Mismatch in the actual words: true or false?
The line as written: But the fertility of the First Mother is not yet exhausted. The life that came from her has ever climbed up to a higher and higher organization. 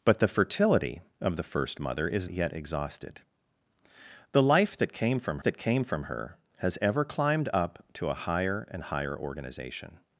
true